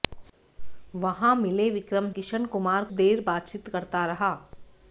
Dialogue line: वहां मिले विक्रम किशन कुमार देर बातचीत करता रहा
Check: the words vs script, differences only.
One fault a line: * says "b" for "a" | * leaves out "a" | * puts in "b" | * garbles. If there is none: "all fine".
all fine